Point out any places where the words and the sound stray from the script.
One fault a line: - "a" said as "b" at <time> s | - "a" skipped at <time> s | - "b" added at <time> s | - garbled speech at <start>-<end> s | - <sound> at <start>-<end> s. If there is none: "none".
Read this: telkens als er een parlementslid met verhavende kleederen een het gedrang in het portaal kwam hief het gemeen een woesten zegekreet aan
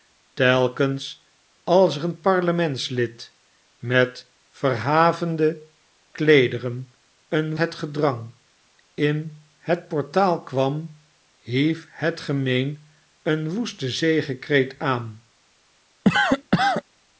- cough at 16.0-16.8 s